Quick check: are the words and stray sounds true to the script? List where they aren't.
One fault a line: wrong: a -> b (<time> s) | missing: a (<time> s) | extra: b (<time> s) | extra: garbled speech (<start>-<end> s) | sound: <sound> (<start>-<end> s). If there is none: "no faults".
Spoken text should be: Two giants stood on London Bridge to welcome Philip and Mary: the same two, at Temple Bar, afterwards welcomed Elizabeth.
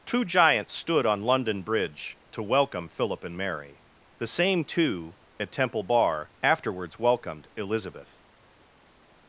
no faults